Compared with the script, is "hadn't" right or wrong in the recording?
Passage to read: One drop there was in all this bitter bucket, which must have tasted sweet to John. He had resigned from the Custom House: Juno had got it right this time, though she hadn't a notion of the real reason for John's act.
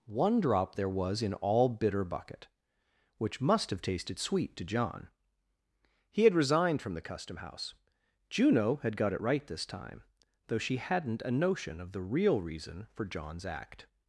right